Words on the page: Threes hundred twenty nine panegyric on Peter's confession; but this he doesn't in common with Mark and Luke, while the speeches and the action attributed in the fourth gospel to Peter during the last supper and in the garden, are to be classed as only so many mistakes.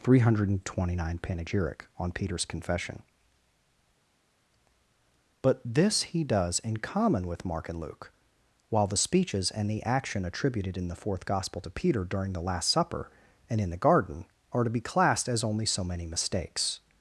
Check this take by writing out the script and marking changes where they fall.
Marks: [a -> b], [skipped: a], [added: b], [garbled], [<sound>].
[Threes -> Three] hundred twenty nine panegyric on Peter's confession; but this he [doesn't -> does] in common with Mark and Luke, while the speeches and the action attributed in the fourth gospel to Peter during the last supper and in the garden, are to be classed as only so many mistakes.